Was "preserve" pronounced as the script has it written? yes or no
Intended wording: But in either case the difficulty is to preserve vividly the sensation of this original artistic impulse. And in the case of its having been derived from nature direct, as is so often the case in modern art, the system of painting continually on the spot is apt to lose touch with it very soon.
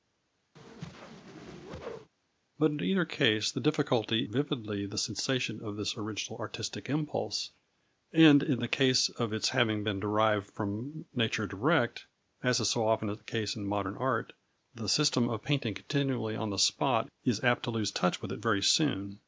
no